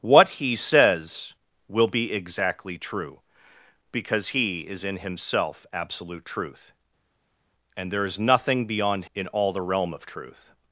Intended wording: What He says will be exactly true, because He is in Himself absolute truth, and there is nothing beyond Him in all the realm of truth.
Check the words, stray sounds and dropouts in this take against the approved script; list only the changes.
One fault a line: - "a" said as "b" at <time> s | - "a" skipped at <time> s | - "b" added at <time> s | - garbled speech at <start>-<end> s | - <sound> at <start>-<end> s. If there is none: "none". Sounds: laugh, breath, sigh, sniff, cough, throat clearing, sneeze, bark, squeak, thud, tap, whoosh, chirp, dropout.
- "Him" skipped at 9.1 s